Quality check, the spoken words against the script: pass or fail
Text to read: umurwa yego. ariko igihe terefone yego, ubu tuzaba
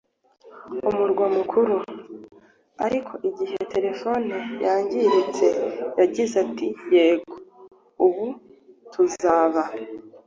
fail